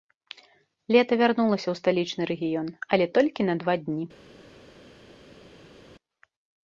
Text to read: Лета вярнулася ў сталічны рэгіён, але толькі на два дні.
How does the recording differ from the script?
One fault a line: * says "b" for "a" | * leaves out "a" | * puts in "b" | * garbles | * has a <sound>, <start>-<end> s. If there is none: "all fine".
all fine